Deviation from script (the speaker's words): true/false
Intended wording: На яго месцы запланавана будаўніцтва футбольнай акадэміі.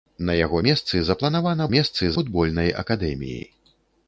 true